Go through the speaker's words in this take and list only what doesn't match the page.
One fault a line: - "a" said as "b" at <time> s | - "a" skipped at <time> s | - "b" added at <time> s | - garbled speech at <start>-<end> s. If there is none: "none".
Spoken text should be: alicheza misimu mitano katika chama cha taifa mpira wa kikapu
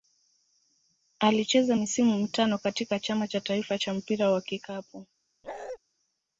- "cha" added at 3.8 s